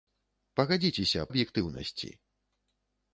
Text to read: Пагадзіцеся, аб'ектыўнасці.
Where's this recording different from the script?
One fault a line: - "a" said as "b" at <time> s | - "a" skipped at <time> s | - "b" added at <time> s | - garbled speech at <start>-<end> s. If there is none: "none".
none